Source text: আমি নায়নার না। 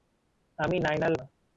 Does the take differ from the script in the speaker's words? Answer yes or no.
no